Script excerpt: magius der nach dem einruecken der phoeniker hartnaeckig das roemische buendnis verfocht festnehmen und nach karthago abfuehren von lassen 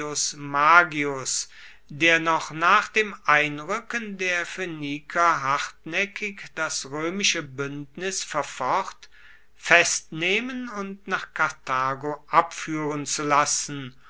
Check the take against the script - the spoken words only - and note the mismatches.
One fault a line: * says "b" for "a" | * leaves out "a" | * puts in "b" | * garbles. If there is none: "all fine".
* puts in "noch"
* says "zu" for "von"